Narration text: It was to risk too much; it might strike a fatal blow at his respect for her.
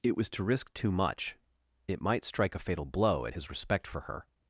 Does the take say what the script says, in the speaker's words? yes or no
yes